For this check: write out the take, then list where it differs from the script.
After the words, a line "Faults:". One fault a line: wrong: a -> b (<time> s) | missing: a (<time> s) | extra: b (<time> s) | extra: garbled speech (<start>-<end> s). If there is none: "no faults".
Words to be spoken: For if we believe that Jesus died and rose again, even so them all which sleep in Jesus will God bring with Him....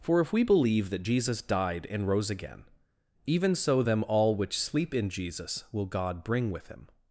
For if we believe that Jesus died and rose again, even so them all which sleep in Jesus will God bring with Him....
Faults:
no faults